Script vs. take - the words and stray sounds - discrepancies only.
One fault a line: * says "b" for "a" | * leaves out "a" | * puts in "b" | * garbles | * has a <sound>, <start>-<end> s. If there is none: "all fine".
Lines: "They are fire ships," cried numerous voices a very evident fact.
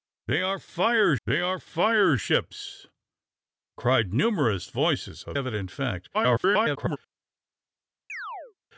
* puts in "they are fire"
* leaves out "very"
* garbles
* has a chirp, 8.1-8.5 s